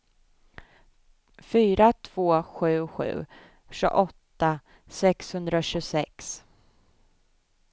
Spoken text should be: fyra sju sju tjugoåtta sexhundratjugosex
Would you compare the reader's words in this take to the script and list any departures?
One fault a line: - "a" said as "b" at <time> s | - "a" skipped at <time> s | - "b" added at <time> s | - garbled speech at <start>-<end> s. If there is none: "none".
- "två" added at 1.9 s